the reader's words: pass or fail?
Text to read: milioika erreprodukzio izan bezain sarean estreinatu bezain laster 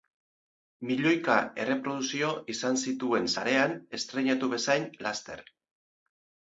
fail